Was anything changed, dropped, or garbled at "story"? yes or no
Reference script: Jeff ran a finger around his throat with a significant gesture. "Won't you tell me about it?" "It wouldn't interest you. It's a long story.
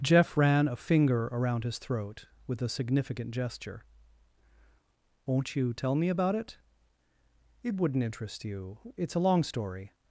no